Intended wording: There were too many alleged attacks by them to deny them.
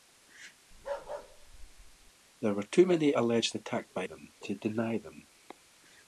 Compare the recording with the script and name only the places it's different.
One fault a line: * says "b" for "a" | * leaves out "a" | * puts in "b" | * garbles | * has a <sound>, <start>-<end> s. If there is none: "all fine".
* has a bark, 0.7-2.1 s